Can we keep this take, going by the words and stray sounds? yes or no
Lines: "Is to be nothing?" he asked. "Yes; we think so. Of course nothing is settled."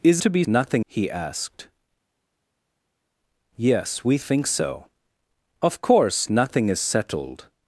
yes